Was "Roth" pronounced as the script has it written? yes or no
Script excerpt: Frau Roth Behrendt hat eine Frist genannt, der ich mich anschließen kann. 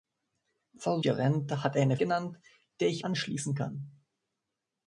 no